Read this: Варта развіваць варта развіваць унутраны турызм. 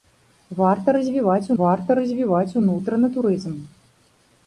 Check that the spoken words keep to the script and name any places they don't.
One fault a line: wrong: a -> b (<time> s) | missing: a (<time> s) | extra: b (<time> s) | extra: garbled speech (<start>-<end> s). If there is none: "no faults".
no faults